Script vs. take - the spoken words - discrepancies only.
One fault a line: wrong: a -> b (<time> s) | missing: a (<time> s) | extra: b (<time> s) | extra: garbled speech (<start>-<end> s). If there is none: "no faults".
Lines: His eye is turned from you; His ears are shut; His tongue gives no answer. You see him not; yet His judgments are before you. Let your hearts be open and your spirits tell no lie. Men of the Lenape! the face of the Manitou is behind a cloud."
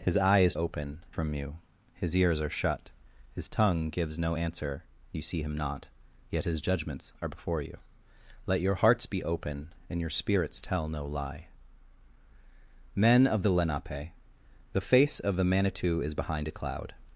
wrong: turned -> open (0.5 s)